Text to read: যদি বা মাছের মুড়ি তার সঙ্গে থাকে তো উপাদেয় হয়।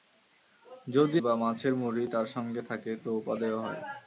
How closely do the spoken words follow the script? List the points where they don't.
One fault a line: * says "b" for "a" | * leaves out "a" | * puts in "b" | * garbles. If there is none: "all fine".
all fine